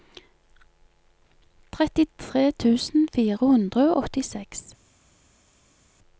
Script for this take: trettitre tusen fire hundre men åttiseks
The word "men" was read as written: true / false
false